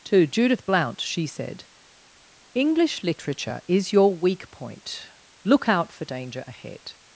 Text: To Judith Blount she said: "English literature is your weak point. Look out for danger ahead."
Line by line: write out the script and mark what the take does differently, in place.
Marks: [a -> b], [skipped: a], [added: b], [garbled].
To Judith Blount she said: "English literature is your weak point. Look out for danger ahead."